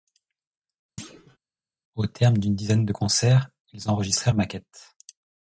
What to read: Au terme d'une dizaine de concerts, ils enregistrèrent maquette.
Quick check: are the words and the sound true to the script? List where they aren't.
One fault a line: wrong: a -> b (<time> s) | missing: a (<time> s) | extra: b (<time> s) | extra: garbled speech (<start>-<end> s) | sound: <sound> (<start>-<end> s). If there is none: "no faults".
sound: thud (1.0-1.4 s)